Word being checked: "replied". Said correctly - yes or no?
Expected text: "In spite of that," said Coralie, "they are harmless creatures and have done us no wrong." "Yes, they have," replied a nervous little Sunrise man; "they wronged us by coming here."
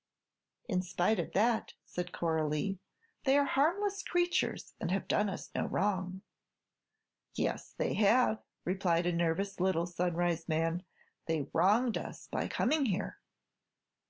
yes